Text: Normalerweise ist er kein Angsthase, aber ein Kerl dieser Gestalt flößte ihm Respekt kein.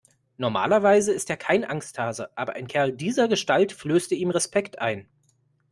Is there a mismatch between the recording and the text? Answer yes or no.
yes